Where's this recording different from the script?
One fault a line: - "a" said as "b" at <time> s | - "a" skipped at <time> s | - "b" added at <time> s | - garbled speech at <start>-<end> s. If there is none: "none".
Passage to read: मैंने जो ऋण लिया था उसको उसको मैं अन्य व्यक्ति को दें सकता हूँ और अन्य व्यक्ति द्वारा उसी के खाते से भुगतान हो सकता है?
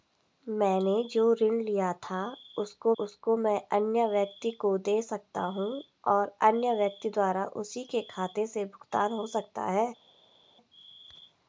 none